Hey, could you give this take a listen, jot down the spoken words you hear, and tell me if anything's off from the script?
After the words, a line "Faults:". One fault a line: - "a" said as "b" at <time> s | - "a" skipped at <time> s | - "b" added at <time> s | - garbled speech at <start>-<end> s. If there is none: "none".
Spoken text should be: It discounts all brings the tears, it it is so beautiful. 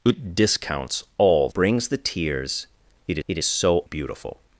It discounts all brings the tears, it it is so beautiful.
Faults:
none